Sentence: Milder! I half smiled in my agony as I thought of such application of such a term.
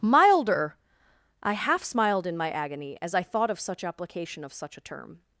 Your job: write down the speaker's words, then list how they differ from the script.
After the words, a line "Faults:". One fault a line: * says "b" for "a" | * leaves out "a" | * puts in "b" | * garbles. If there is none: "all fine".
Milder! I half smiled in my agony as I thought of such application of such a term.
Faults:
all fine